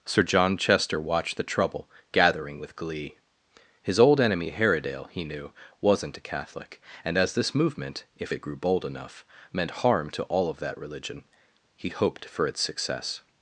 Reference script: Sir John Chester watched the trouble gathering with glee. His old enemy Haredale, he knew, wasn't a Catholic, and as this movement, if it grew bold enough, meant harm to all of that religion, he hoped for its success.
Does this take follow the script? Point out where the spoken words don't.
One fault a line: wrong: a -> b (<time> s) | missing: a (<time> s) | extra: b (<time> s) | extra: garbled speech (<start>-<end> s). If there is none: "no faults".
no faults